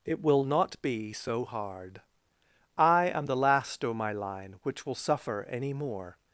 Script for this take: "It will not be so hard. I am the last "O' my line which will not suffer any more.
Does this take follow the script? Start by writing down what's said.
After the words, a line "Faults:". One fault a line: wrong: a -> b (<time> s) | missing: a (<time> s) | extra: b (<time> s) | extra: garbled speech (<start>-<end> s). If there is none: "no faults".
"It will not be so hard. I am the last "O' my line which will suffer any more.
Faults:
missing: not (4.9 s)